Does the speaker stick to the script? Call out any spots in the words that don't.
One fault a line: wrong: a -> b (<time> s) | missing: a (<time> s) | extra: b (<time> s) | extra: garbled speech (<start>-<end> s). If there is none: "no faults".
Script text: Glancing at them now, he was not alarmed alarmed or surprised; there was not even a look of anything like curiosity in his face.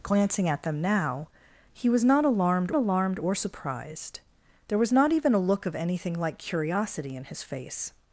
no faults